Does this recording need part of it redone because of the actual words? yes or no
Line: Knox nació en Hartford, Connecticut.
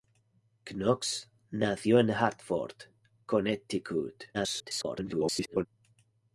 yes